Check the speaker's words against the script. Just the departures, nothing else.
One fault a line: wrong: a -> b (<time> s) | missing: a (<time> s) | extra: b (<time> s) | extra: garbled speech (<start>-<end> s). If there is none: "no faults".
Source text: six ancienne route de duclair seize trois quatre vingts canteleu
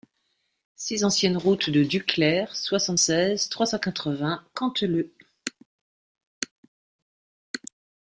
extra: soixante (2.5 s)
extra: cent (3.6 s)